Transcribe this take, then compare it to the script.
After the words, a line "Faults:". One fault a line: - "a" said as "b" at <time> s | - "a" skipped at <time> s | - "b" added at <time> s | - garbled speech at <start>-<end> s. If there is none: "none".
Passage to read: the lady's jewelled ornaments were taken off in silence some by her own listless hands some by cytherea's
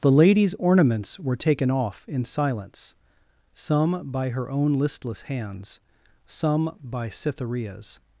the lady's ornaments were taken off in silence some by her own listless hands some by cytherea's
Faults:
- "jewelled" skipped at 0.6 s